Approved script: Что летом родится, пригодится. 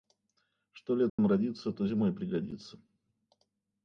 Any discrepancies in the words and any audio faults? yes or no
yes